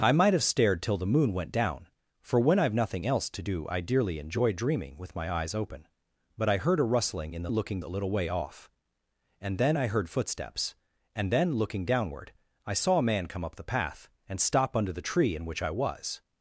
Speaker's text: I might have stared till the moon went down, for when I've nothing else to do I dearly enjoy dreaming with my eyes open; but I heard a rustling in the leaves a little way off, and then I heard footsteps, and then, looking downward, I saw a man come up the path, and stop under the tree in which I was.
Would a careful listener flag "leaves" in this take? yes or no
yes